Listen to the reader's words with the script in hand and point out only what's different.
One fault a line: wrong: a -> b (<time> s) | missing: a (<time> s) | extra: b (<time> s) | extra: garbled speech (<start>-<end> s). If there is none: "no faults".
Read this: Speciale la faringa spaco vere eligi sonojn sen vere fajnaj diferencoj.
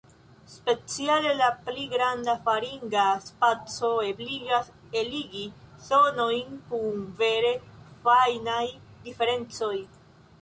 extra: pli granda (1.6 s)
wrong: vere -> ebligas (4.1 s)
wrong: sen -> kun (6.7 s)